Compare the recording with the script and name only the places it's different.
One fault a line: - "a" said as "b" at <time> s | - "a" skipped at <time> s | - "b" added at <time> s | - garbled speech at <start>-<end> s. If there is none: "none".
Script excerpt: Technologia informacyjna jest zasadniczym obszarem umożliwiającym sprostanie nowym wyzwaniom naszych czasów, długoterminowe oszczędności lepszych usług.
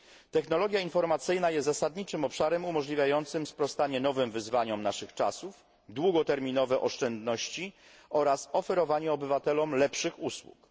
- "oraz oferowanie obywatelom" added at 8.1 s